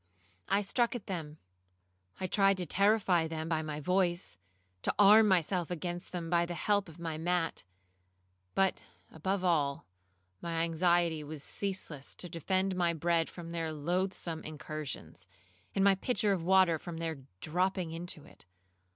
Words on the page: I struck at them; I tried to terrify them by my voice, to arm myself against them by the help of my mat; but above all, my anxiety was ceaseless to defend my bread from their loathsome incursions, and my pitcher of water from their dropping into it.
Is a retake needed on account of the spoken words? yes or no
no